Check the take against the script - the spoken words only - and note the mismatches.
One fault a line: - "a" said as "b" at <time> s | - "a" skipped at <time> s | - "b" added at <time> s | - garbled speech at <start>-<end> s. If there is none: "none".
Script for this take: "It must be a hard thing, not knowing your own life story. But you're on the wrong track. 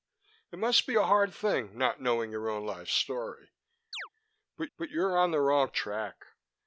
- "but" added at 4.8 s